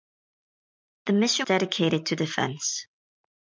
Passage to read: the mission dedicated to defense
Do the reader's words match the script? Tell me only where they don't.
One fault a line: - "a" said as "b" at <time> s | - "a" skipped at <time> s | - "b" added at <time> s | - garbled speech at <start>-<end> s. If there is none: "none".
none